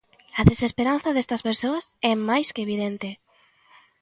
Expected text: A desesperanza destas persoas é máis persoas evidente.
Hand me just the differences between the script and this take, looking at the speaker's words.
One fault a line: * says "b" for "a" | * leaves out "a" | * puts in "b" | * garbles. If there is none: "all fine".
* says "que" for "persoas"